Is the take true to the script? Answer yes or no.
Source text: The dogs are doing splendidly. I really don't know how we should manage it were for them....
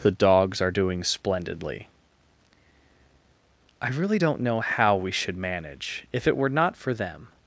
no